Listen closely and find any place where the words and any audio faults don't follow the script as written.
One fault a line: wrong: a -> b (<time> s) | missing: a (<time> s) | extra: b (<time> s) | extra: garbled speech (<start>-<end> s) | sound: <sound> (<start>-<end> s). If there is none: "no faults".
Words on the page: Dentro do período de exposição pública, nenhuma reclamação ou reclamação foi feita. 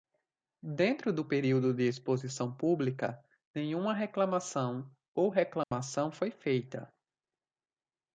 sound: dropout (5.6-5.7 s)